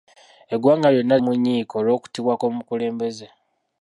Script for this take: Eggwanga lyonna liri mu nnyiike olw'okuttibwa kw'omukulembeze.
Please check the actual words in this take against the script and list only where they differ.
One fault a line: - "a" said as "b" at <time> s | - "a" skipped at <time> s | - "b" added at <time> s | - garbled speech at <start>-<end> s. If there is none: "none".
- "liri" skipped at 1.1 s